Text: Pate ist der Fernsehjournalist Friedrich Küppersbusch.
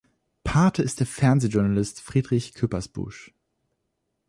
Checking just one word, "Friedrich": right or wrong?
right